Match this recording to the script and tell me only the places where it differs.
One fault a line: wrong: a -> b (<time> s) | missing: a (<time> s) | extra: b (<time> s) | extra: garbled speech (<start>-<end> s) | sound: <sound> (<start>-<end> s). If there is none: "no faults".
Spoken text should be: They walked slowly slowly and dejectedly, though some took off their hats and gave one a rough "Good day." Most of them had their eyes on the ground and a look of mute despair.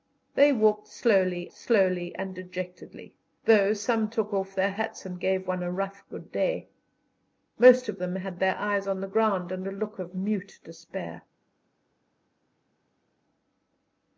no faults